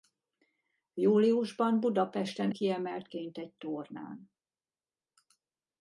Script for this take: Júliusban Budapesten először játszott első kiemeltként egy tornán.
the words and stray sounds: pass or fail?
fail